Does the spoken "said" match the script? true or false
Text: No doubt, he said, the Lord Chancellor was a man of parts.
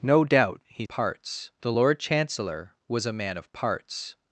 false